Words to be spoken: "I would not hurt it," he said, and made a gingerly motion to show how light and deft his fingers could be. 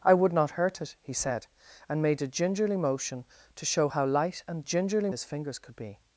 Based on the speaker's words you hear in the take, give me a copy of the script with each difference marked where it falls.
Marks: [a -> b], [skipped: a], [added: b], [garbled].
"I would not hurt it," he said, and made a gingerly motion to show how light and [deft -> gingerly] his fingers could be.